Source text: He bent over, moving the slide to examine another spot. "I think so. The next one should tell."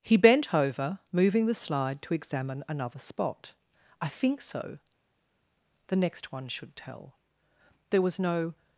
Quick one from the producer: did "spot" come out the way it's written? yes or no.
yes